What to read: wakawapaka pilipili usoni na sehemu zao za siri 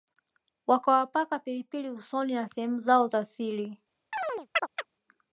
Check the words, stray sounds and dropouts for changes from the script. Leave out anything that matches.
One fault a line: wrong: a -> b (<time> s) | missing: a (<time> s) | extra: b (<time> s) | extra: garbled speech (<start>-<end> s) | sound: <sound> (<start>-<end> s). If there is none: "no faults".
sound: chirp (4.1-4.9 s)